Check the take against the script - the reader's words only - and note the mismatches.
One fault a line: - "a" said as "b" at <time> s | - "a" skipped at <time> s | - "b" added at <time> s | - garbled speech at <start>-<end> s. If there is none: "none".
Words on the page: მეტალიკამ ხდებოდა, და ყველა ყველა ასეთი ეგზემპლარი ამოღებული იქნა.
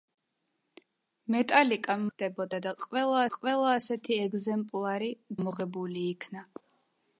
none